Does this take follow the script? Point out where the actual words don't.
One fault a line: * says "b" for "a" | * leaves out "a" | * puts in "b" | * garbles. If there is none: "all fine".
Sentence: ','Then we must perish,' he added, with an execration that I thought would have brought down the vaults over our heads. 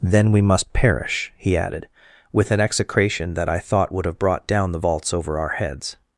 all fine